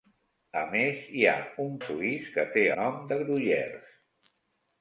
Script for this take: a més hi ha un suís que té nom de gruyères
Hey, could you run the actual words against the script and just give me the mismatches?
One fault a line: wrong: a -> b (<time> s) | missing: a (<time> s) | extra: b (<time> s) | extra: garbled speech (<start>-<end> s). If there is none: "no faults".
no faults